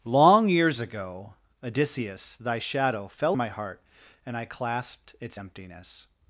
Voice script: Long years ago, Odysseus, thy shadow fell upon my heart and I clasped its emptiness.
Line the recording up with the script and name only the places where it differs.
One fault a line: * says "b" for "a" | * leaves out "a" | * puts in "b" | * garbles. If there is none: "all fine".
* leaves out "upon"